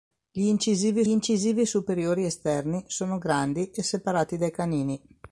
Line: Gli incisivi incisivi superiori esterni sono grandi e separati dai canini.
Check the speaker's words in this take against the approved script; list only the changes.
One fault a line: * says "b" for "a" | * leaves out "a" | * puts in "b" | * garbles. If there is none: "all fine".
all fine